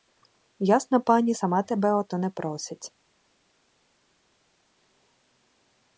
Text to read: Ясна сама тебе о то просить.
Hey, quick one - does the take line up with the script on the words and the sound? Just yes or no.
no